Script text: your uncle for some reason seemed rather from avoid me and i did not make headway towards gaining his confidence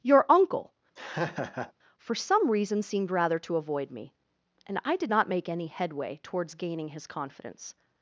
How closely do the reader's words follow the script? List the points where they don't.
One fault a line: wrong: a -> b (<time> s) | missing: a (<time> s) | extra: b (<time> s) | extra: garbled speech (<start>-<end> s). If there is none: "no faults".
wrong: from -> to (3.4 s)
extra: any (5.5 s)